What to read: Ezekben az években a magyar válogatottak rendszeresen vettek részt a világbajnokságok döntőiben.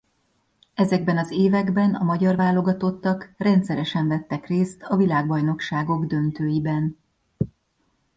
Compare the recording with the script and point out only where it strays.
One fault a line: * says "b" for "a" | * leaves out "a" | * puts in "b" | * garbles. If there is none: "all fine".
all fine